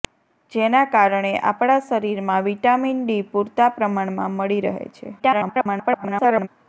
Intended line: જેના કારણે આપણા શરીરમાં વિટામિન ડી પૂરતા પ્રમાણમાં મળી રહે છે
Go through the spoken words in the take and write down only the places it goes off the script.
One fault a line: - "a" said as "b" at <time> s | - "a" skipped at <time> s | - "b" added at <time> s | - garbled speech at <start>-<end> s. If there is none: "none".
- garbled speech at 5.2-6.5 s